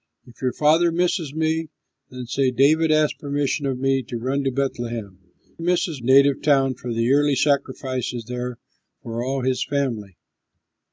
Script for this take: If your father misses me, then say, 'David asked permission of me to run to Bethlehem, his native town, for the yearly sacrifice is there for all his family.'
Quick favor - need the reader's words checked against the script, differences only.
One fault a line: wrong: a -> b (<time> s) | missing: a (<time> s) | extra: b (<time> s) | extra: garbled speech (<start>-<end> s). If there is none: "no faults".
wrong: his -> misses (5.6 s)